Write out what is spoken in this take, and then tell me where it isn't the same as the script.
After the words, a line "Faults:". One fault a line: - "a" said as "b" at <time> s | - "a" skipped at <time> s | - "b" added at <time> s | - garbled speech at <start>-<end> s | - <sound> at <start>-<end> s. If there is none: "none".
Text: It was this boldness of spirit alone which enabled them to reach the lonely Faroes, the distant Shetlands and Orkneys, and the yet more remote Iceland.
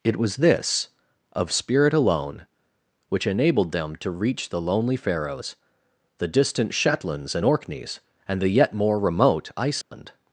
It was this of spirit alone which enabled them to reach the lonely Faroes, the distant Shetlands and Orkneys, and the yet more remote Iceland.
Faults:
- "boldness" skipped at 0.9 s
- dropout at 9.8-9.9 s